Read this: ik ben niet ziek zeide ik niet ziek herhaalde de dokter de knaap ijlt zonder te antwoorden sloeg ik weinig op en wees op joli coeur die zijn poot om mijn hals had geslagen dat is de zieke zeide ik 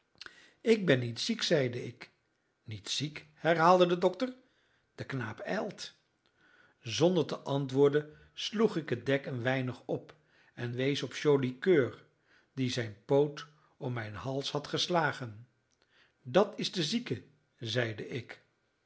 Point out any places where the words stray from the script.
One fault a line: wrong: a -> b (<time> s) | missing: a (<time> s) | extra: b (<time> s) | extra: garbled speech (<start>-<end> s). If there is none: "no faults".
extra: het dek een (8.9 s)